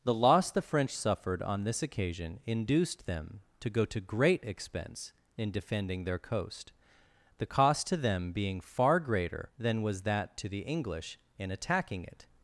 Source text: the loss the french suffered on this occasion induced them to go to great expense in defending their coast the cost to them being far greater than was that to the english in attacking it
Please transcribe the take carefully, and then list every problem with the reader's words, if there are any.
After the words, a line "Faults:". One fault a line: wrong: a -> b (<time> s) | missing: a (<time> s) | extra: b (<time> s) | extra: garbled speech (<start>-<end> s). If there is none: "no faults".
the loss the french suffered on this occasion induced them to go to great expense in defending their coast the cost to them being far greater than was that to the english in attacking it
Faults:
no faults